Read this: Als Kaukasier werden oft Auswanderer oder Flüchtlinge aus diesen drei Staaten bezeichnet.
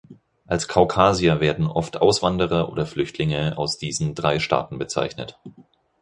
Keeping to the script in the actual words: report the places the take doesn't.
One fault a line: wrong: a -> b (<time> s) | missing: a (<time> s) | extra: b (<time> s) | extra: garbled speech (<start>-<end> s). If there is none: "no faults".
no faults